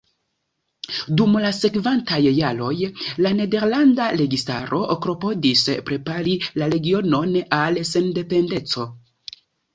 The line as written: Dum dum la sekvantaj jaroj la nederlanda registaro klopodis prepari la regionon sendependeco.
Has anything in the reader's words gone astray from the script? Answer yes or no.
yes